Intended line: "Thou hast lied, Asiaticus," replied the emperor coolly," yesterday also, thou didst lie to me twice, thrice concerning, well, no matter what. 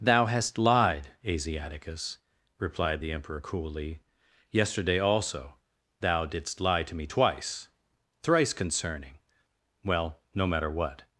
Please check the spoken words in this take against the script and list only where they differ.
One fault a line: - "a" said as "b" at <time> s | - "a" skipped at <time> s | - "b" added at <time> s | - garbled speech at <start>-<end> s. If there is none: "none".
none